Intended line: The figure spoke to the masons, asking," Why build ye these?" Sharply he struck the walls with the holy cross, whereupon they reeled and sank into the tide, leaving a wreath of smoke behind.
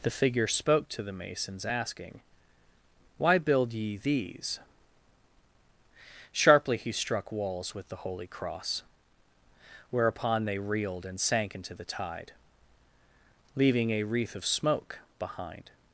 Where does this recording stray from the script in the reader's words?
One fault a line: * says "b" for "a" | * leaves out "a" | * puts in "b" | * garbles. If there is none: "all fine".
* leaves out "the"